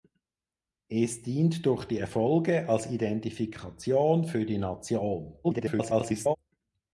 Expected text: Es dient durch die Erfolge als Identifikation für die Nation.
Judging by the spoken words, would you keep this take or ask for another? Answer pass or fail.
fail